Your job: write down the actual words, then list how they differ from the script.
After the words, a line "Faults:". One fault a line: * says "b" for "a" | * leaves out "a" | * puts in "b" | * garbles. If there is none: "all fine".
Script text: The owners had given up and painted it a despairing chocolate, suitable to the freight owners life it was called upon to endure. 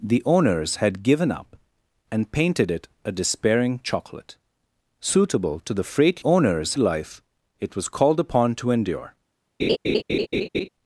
The owners had given up and painted it a despairing chocolate, suitable to the freight owners life it was called upon to endure.
Faults:
all fine